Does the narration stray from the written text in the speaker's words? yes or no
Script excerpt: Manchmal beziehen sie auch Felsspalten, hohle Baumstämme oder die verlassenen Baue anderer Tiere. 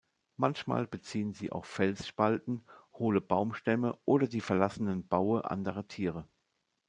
no